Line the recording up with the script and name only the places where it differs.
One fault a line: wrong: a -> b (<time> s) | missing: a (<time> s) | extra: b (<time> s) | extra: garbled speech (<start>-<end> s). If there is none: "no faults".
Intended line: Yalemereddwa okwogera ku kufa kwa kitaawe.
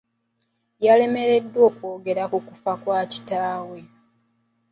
no faults